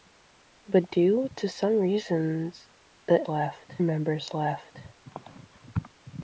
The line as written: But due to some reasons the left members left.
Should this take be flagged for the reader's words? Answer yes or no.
no